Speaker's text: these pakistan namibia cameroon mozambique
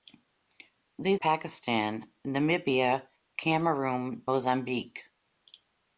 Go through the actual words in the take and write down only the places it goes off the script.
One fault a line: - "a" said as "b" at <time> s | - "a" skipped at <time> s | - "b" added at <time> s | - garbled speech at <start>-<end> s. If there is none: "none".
none